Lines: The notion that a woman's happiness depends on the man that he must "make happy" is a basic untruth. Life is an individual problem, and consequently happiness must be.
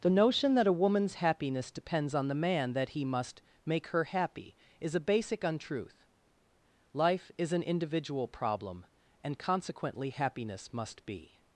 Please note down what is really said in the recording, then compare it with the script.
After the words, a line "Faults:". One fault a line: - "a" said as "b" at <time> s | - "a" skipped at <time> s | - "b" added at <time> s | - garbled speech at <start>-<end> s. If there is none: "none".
The notion that a woman's happiness depends on the man that he must "make her happy" is a basic untruth. Life is an individual problem, and consequently happiness must be.
Faults:
- "her" added at 3.9 s